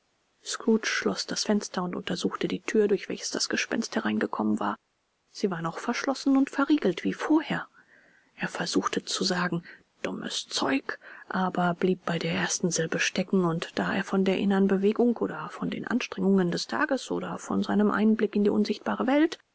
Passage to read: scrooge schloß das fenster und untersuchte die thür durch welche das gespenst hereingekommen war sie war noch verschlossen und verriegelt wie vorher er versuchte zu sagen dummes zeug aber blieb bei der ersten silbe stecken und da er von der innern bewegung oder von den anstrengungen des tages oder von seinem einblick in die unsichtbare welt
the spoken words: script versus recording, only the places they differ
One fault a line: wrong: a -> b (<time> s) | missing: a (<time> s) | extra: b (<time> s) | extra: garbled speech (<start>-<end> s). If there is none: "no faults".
no faults